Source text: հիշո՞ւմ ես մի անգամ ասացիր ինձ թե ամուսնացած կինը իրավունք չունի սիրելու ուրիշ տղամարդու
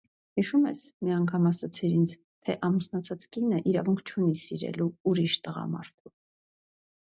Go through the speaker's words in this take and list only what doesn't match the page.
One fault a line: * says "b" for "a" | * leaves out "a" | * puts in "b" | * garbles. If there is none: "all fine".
all fine